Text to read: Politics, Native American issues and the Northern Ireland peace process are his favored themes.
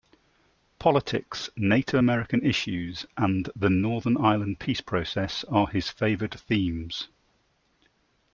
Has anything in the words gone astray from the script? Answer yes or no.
no